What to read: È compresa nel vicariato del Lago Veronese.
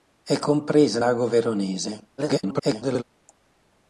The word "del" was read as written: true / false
false